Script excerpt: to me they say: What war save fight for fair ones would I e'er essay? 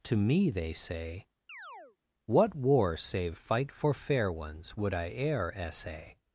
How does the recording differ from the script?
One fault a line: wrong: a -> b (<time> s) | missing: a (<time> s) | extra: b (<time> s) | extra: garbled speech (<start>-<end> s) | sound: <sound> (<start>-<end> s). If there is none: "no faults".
sound: chirp (1.5-2.0 s)